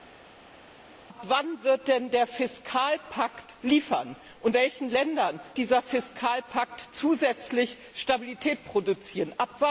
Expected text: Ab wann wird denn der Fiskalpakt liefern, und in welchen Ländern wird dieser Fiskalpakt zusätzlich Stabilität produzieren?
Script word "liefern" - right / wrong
right